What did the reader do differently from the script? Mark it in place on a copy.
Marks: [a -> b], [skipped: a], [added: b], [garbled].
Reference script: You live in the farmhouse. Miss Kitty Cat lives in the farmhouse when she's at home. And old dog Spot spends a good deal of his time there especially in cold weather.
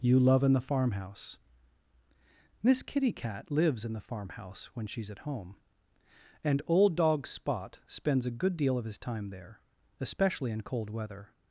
You [live -> love] in the farmhouse. Miss Kitty Cat lives in the farmhouse when she's at home. And old dog Spot spends a good deal of his time there especially in cold weather.